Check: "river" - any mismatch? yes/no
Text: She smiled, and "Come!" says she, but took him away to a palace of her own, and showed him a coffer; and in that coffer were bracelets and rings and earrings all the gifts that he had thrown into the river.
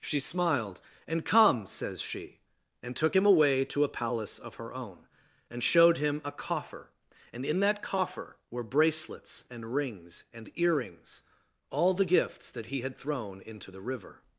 no